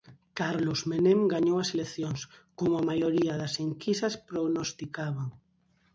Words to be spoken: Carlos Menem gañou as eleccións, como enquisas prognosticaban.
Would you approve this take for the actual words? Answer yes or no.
no